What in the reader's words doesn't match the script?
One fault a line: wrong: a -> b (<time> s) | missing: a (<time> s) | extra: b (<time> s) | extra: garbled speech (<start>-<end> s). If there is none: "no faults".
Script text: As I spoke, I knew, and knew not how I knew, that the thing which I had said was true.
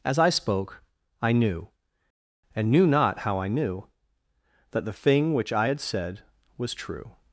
no faults